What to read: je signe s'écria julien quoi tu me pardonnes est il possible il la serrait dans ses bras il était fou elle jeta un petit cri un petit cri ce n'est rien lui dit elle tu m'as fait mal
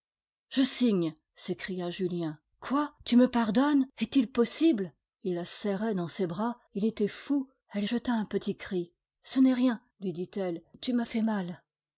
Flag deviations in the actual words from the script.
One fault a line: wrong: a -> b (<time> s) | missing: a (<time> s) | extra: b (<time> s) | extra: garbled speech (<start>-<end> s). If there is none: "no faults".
missing: un petit cri (8.9 s)